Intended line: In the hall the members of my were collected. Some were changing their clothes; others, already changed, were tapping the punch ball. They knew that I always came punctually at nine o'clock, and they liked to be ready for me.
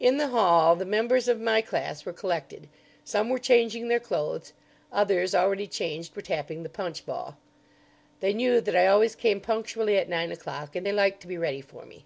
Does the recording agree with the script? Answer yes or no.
no